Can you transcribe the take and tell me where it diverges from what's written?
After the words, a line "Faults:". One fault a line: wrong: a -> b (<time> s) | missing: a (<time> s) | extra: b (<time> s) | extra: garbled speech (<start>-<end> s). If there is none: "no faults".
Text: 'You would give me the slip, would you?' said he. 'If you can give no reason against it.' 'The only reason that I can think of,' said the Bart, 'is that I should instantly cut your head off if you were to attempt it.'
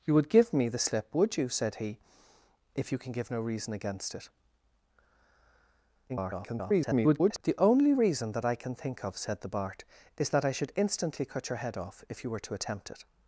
'You would give me the slip, would you?' said he. 'If you can give no reason against it.' [garbled] 'The only reason that I can think of,' said the Bart, 'is that I should instantly cut your head off if you were to attempt it.'
Faults:
extra: garbled speech (6.1-7.4 s)